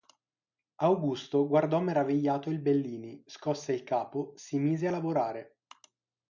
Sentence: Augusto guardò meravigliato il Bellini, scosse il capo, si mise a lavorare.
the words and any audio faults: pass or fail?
pass